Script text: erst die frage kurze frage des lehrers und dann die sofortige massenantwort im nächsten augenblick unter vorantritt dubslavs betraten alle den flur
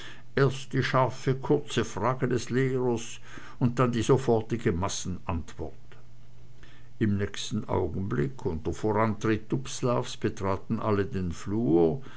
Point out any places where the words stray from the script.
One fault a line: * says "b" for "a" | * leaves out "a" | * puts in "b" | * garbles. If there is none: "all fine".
* says "scharfe" for "frage"